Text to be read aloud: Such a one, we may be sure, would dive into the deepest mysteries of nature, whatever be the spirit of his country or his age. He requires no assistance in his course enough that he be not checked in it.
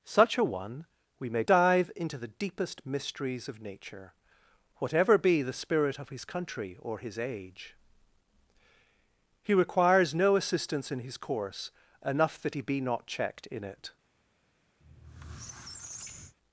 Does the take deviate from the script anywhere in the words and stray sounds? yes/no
yes